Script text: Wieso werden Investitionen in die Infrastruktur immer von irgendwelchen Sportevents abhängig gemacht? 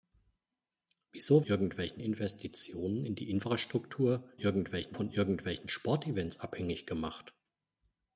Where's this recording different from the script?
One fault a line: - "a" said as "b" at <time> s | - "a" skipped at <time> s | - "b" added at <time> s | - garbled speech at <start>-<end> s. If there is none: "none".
- "werden" said as "irgendwelchen" at 1.4 s
- "immer" said as "irgendwelchen" at 4.4 s